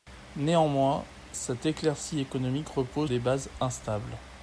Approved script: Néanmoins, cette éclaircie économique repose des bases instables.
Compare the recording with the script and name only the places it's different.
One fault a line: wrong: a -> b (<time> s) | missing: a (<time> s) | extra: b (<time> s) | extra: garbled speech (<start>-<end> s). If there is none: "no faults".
no faults